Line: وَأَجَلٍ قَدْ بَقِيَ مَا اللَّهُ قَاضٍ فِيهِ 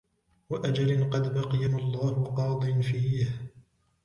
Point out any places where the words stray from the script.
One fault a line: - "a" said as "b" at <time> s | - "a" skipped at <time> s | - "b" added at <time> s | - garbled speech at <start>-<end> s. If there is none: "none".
none